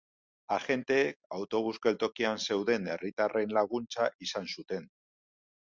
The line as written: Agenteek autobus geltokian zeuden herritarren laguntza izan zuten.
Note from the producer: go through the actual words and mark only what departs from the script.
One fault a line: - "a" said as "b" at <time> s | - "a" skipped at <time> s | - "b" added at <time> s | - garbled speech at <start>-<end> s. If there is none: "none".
none